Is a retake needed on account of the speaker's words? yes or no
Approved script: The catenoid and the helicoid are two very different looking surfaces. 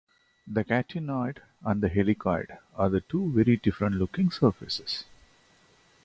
no